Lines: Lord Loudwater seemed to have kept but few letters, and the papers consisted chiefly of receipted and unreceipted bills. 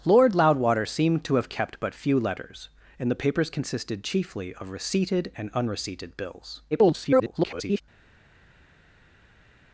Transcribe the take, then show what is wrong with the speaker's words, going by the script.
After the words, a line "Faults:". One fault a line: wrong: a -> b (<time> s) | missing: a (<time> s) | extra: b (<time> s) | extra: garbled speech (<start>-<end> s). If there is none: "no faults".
Lord Loudwater seemed to have kept but few letters, and the papers consisted chiefly of receipted and unreceipted bills. [garbled]
Faults:
extra: garbled speech (6.7-7.8 s)